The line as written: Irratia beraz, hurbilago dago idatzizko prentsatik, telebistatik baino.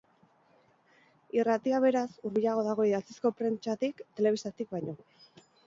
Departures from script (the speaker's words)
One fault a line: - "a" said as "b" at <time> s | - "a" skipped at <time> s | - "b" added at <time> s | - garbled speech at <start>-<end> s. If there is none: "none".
none